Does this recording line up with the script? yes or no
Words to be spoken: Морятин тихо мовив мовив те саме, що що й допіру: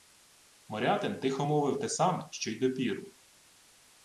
no